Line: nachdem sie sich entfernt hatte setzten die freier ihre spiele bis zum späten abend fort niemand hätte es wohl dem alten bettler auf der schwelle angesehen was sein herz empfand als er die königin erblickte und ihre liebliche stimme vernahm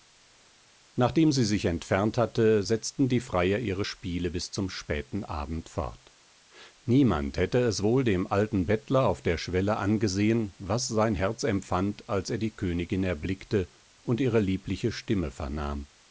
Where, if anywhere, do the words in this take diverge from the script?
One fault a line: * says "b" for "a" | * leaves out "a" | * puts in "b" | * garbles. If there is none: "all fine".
all fine